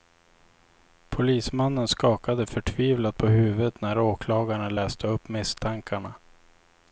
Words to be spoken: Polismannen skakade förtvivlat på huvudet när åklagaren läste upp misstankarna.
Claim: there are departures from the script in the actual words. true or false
false